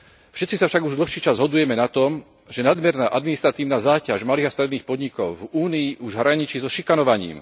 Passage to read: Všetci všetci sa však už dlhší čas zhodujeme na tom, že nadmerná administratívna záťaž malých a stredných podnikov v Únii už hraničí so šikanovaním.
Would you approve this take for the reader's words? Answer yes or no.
no